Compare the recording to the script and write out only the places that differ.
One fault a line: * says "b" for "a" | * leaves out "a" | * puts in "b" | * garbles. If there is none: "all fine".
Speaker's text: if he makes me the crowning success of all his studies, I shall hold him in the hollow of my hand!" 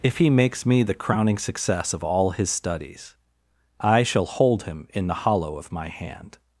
all fine